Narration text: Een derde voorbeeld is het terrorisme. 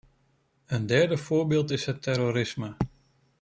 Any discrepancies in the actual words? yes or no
no